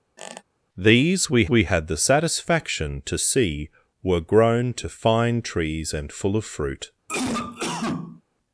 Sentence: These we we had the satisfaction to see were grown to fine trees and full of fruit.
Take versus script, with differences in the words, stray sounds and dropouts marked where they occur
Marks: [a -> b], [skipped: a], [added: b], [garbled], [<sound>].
[squeak] These we we had the satisfaction to see were grown to fine trees and full of fruit. [cough]